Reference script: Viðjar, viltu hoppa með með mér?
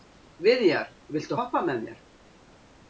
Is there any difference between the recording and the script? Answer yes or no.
yes